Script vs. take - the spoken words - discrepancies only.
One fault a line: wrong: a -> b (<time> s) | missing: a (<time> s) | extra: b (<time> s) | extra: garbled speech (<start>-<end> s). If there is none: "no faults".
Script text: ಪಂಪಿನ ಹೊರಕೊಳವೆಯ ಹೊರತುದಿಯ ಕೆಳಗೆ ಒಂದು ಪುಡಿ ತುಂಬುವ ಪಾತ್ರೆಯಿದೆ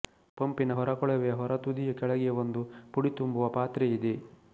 no faults